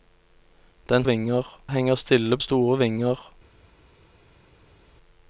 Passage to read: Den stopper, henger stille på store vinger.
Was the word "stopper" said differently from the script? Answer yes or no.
yes